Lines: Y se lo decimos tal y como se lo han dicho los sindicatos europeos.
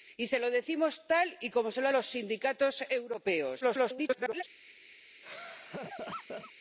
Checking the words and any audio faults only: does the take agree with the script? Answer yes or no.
no